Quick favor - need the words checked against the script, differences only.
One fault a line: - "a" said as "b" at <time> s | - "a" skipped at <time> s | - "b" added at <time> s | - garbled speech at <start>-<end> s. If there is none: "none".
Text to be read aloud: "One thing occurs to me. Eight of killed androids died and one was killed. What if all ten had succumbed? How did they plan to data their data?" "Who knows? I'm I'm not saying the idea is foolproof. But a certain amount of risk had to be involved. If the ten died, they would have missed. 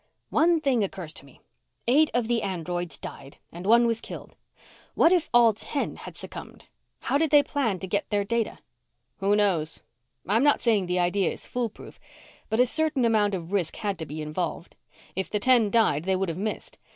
- "killed" said as "the" at 2.3 s
- "data" said as "get" at 7.9 s
- "I'm" skipped at 10.4 s